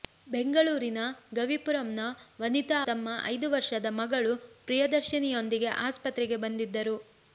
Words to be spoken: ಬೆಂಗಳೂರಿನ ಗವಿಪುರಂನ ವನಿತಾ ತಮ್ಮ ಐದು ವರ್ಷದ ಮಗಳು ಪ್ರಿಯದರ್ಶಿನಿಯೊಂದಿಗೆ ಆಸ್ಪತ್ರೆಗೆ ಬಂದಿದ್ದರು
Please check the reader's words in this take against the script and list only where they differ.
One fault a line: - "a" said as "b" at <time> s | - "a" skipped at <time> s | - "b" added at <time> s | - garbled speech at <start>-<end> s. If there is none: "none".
none